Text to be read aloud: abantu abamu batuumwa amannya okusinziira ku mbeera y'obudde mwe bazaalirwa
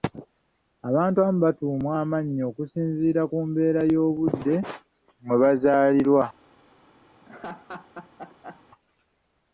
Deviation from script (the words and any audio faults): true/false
true